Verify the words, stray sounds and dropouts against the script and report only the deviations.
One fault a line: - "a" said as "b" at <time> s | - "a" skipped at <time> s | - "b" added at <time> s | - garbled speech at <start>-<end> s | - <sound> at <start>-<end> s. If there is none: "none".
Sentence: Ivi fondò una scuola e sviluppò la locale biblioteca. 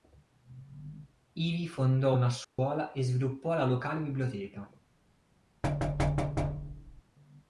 - dropout at 2.4-2.6 s
- thud at 5.6-7.0 s